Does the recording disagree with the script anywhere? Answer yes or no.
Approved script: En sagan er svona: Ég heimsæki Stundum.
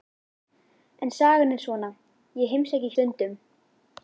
no